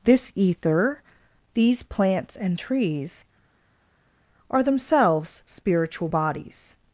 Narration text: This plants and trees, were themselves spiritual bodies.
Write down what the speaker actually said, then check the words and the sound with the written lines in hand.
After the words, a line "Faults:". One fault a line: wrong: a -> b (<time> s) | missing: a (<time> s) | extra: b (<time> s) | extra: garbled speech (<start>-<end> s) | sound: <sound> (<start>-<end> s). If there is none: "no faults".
This ether, these plants and trees, are themselves spiritual bodies.
Faults:
extra: ether these (0.3 s)
wrong: were -> are (4.5 s)